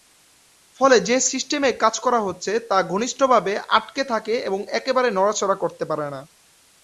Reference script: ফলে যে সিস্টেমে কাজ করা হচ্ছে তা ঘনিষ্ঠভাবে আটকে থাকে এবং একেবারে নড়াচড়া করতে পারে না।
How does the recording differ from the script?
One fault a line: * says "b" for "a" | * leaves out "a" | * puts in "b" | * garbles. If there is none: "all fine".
all fine